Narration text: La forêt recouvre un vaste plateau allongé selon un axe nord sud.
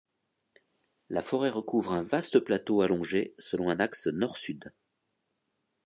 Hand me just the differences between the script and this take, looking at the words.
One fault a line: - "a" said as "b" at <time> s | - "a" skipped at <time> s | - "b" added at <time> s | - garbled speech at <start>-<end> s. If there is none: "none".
none